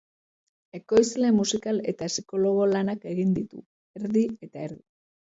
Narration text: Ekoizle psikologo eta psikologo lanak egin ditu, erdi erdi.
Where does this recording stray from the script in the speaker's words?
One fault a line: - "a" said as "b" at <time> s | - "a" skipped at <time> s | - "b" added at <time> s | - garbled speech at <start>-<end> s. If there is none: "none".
- "psikologo" said as "musikal" at 1.4 s
- "eta" added at 4.5 s